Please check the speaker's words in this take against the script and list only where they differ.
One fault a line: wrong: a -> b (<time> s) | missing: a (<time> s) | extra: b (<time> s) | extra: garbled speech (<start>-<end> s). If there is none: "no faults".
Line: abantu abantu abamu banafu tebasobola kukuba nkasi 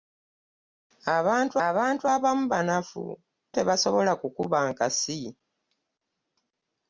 no faults